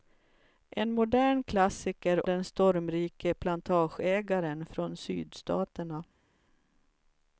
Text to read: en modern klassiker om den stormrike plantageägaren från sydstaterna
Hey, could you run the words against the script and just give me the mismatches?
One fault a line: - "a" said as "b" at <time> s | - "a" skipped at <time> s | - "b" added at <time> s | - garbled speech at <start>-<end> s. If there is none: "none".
- "om" skipped at 2.3 s